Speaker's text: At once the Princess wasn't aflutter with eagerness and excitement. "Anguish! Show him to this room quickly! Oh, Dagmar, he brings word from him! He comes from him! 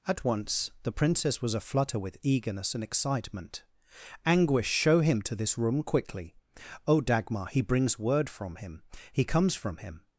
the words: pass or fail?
fail